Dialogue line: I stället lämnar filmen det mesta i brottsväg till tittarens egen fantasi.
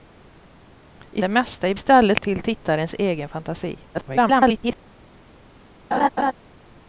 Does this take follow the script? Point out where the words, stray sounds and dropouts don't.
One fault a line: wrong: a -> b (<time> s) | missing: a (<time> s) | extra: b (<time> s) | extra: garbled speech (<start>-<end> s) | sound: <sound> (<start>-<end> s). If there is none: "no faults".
missing: stället lämnar filmen (1.2 s)
wrong: brottsväg -> stället (1.7 s)
extra: garbled speech (3.9-4.8 s)
sound: laugh (5.9-6.3 s)